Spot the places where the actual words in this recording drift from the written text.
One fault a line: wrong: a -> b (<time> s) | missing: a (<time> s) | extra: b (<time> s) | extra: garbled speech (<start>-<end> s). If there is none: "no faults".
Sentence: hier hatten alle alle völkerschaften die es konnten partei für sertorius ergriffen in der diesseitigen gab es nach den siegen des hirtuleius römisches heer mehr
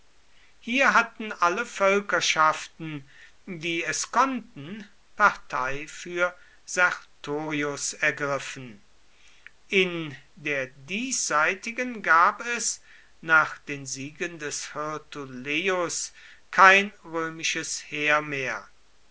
missing: alle (1.6 s)
extra: kein (16.5 s)